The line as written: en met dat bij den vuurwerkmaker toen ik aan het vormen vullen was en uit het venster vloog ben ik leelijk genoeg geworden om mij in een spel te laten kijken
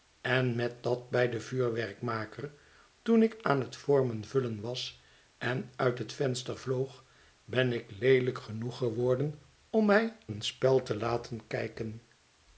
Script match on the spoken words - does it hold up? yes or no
no